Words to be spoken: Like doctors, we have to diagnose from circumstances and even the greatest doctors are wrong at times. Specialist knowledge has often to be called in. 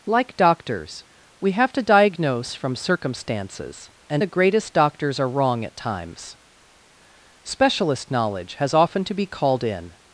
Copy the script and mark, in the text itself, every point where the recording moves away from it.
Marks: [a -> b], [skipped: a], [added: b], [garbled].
Like doctors, we have to diagnose from circumstances and [skipped: even] the greatest doctors are wrong at times. Specialist knowledge has often to be called in.